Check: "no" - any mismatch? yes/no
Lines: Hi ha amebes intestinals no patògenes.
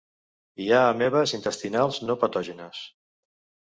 no